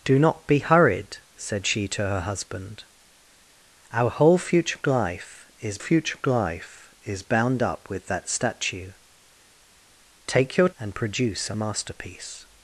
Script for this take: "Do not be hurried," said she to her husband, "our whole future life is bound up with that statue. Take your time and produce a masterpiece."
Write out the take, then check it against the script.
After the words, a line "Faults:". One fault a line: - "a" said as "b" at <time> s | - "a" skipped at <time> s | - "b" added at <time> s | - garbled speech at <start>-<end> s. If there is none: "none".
"Do not be hurried," said she to her husband, "our whole future life is future life is bound up with that statue. Take your and produce a masterpiece."
Faults:
- "future life is" added at 5.8 s
- "time" skipped at 10.7 s